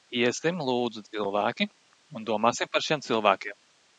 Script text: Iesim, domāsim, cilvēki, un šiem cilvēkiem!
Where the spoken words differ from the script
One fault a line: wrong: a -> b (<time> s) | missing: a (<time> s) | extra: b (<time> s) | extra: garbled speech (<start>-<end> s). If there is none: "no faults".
wrong: domāsim -> lūdzu (0.7 s)
extra: domāsim par (2.3 s)